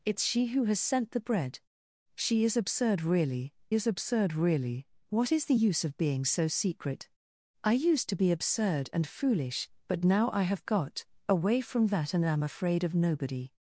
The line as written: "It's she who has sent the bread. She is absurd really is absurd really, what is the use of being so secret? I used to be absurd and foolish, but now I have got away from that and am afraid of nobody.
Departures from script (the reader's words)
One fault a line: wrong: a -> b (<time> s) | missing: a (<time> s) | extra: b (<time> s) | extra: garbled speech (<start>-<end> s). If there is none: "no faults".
no faults